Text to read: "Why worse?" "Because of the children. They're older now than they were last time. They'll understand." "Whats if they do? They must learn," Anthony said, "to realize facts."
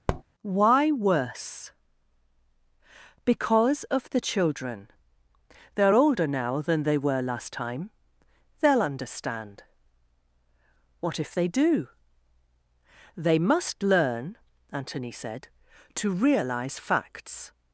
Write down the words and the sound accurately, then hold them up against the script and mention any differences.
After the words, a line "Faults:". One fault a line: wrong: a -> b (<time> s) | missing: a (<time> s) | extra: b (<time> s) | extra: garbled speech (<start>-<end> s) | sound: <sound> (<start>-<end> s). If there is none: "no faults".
"Why worse?" "Because of the children. They're older now than they were last time. They'll understand." "What if they do? They must learn," Anthony said, "to realize facts."
Faults:
sound: tap (0.1-0.2 s)
wrong: Whats -> What (11.0 s)